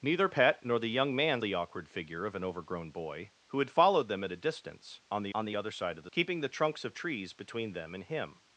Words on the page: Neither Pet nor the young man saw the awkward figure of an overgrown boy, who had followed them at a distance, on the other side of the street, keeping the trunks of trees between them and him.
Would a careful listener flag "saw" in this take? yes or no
yes